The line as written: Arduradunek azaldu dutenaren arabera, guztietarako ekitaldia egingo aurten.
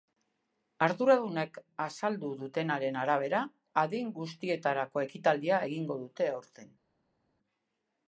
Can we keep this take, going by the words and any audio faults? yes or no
no